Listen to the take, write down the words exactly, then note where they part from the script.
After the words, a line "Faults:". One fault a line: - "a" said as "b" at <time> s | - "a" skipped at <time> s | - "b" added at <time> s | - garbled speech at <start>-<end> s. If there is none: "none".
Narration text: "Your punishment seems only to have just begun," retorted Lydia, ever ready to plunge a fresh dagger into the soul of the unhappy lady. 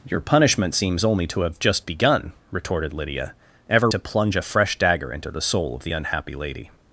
"Your punishment seems only to have just begun," retorted Lydia, ever to plunge a fresh dagger into the soul of the unhappy lady.
Faults:
- "ready" skipped at 3.9 s